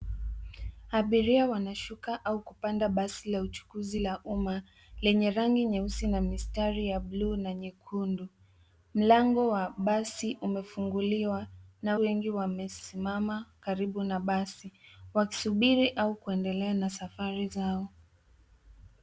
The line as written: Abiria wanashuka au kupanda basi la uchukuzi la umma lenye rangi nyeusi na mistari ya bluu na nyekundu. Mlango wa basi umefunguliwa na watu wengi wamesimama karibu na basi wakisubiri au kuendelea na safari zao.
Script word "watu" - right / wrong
wrong